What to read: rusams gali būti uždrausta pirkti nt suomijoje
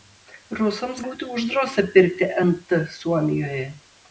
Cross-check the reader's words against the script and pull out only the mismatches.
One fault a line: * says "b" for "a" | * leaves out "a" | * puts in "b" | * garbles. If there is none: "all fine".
* leaves out "gali"